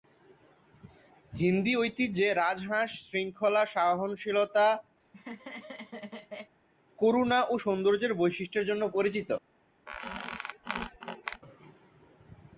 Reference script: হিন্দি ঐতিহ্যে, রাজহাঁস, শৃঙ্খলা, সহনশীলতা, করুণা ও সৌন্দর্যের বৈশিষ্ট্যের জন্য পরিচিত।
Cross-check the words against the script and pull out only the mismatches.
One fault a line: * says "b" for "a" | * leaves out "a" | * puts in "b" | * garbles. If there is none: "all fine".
all fine